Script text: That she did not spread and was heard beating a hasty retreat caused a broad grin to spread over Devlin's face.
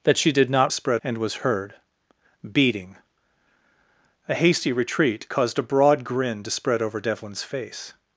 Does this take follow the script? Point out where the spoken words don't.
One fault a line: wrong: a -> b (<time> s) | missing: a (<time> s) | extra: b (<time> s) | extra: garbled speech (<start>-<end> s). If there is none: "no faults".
no faults